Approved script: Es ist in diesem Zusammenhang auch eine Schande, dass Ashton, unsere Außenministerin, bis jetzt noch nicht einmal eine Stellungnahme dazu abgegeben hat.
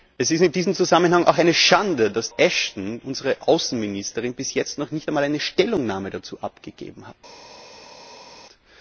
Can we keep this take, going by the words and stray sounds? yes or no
yes